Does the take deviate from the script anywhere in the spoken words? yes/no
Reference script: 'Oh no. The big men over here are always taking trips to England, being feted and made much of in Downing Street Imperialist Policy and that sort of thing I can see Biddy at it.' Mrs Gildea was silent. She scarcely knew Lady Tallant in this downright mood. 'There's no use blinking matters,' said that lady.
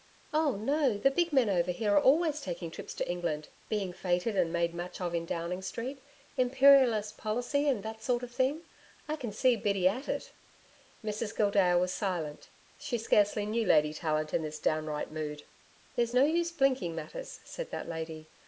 no